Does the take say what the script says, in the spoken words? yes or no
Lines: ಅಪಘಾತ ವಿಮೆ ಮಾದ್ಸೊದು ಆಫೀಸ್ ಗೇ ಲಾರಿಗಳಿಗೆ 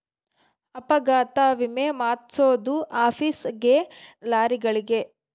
yes